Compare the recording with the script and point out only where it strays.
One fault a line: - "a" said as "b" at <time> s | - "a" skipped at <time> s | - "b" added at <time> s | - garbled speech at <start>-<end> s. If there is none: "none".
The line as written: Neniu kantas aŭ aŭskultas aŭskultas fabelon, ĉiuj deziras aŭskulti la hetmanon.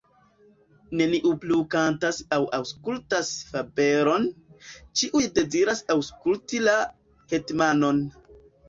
- "plu" added at 1.4 s
- "aŭskultas" skipped at 3.3 s